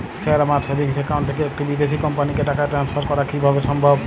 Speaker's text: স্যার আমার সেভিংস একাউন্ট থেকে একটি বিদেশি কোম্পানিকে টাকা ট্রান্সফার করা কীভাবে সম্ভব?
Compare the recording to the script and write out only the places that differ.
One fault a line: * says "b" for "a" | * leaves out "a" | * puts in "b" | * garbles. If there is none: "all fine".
all fine